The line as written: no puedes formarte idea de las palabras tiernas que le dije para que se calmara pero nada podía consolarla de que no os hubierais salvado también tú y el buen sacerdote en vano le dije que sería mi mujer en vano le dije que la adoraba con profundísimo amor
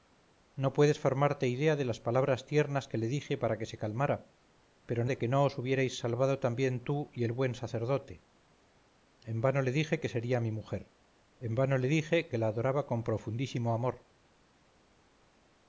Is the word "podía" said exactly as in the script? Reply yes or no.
no